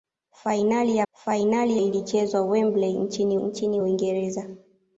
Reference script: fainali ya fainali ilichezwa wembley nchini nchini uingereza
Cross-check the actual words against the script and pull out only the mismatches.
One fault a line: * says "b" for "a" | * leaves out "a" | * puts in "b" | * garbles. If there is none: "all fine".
all fine